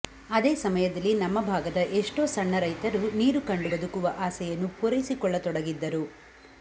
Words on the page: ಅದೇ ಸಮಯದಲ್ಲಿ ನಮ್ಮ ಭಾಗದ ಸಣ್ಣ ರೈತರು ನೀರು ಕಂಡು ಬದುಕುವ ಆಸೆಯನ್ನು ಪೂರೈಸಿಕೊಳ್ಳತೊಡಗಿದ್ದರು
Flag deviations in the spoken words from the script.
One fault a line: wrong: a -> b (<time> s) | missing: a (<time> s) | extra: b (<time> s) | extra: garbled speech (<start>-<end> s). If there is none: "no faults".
extra: ಎಷ್ಟೋ (2.0 s)